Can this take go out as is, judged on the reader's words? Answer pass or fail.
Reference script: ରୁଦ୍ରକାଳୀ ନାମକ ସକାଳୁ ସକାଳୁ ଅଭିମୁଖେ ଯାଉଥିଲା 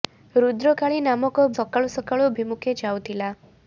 pass